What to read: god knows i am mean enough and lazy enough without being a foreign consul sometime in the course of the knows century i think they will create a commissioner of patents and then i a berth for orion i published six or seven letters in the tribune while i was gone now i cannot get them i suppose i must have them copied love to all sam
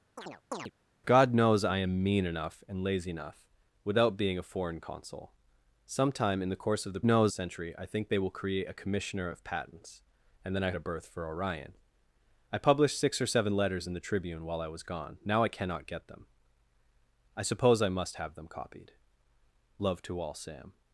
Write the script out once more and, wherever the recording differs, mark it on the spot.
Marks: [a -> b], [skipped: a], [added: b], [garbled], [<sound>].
[chirp] god knows i am mean enough and lazy enough without being a foreign consul sometime in the course of the knows century i think they will create a commissioner of patents and then i a berth for orion i published six or seven letters in the tribune while i was gone now i cannot get them i suppose i must have them copied love to all sam